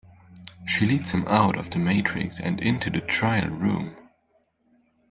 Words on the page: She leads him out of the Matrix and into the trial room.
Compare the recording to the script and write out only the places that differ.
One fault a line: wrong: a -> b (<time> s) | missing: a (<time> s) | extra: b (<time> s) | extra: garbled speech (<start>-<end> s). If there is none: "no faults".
no faults